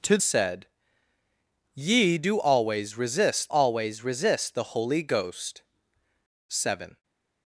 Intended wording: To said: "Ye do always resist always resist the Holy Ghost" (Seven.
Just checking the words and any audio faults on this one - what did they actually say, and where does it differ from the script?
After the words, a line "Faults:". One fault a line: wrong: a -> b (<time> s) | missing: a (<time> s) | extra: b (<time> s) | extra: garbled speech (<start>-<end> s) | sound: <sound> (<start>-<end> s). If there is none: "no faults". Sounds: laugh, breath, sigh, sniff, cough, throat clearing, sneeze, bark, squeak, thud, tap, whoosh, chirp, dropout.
To said: "Ye do always resist always resist the Holy Ghost" (Seven.
Faults:
no faults